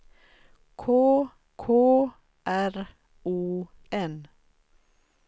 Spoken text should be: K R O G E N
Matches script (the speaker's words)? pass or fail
fail